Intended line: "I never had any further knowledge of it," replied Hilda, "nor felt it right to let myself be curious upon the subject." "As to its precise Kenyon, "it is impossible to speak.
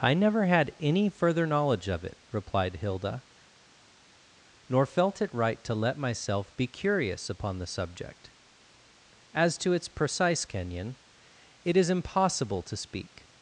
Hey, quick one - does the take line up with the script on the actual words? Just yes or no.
yes